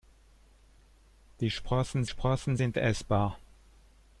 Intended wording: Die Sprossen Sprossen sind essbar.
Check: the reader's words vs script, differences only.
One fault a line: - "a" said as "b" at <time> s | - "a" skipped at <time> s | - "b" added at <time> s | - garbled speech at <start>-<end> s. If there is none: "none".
none